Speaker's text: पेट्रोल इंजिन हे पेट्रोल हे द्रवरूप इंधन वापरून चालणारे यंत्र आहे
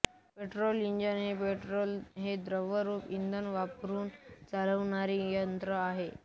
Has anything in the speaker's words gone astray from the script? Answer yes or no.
no